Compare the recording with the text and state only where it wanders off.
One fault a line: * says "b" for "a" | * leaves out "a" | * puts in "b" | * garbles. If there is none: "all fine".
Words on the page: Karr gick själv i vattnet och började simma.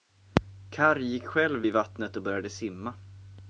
all fine